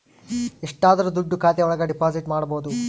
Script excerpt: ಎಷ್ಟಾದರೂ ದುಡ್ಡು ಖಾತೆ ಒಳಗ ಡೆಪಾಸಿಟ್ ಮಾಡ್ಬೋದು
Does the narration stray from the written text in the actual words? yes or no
no